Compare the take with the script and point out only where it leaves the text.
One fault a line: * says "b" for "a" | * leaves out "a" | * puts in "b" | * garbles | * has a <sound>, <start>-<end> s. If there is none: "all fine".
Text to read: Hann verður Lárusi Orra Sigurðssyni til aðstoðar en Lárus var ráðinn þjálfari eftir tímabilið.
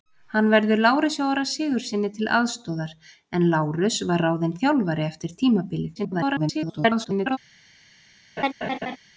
* garbles
* has a laugh, 8.4-9.0 s